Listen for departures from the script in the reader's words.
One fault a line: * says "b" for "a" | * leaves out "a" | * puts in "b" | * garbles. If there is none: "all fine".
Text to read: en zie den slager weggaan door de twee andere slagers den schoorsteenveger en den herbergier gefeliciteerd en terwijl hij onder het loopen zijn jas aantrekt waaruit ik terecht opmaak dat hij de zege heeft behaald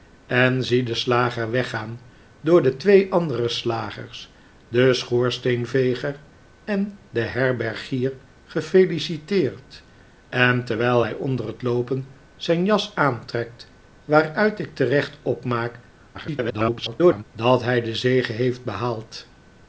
* garbles